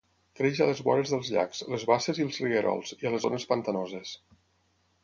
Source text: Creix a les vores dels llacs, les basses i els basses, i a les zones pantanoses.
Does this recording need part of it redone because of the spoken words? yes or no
yes